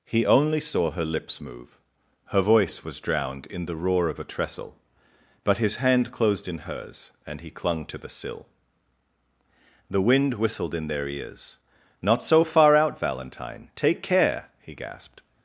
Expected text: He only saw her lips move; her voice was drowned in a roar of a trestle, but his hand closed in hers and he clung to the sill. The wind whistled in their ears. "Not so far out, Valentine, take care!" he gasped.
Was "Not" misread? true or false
false